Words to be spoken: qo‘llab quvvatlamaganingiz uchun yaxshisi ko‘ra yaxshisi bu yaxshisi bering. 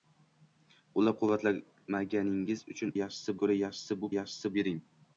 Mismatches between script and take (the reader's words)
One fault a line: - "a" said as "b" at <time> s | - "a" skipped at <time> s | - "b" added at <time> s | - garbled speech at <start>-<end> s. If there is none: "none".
none